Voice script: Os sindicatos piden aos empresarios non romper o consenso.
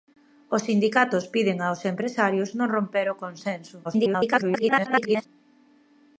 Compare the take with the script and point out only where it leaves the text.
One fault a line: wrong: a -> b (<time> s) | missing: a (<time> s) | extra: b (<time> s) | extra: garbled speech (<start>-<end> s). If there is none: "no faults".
extra: garbled speech (3.8-5.3 s)